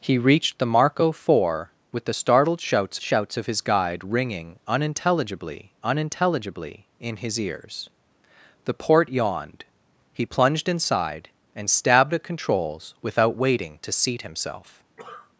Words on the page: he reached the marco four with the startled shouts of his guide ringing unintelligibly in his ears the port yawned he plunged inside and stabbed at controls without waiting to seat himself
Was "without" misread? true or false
false